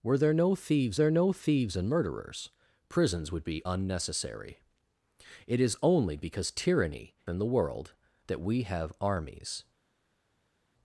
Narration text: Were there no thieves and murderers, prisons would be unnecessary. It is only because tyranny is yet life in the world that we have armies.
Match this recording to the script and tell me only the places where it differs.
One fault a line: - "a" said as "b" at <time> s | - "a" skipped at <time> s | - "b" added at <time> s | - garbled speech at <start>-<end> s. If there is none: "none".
- "there no thieves" added at 0.9 s
- "is yet life" skipped at 7.2 s